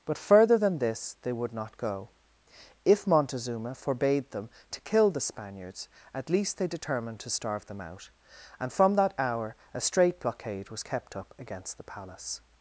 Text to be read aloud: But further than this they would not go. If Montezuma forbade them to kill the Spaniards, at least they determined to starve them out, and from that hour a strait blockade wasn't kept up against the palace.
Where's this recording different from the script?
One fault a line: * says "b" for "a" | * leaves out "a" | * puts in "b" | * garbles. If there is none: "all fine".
* says "was" for "wasn't"